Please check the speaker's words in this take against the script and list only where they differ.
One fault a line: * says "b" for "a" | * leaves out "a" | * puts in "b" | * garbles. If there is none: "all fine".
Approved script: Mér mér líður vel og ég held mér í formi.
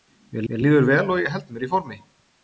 all fine